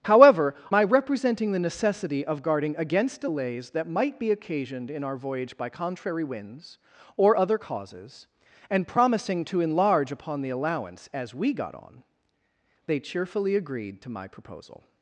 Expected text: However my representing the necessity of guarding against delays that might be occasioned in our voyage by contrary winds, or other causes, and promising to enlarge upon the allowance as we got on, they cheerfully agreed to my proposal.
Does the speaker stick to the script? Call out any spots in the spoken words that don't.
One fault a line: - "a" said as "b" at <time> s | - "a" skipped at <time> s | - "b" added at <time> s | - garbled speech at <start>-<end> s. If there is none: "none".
none